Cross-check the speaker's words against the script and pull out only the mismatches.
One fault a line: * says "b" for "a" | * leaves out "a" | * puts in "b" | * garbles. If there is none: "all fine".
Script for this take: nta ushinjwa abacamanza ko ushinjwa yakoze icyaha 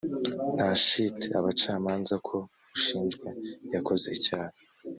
* says "shiti" for "ushinjwa"